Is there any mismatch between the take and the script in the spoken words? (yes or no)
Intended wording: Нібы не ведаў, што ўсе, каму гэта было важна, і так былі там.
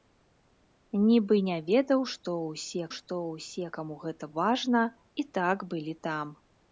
yes